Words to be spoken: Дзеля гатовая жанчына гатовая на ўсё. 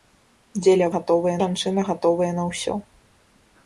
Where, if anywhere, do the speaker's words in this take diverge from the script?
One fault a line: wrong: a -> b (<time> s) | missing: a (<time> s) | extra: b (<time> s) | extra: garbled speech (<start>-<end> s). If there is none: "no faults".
no faults